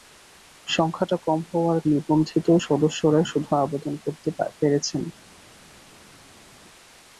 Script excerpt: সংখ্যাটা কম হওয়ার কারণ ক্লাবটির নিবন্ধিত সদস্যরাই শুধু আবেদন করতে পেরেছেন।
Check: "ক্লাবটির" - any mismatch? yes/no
yes